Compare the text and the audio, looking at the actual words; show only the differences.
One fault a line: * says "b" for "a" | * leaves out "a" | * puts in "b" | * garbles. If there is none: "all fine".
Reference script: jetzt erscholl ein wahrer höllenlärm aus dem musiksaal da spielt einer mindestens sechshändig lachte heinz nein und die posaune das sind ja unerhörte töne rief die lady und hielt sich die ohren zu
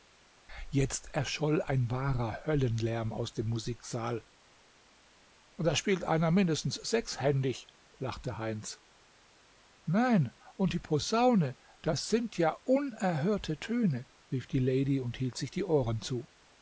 all fine